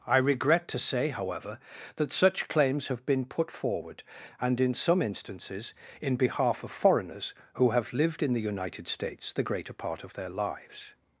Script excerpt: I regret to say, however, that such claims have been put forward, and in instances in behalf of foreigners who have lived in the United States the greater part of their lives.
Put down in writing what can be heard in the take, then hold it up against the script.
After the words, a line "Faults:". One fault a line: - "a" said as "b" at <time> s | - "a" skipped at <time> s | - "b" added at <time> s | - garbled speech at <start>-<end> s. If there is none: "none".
I regret to say, however, that such claims have been put forward, and in some instances in behalf of foreigners who have lived in the United States the greater part of their lives.
Faults:
- "some" added at 4.7 s